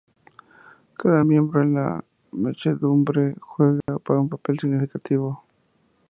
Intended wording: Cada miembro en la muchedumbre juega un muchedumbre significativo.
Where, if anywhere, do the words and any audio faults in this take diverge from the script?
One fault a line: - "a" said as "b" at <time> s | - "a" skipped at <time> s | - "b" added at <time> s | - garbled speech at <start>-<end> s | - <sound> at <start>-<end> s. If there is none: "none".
- dropout at 3.8-3.9 s
- "muchedumbre" said as "papel" at 4.3 s